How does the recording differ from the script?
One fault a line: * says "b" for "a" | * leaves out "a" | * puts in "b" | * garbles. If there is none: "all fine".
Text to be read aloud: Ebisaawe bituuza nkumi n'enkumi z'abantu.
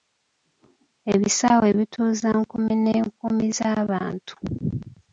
all fine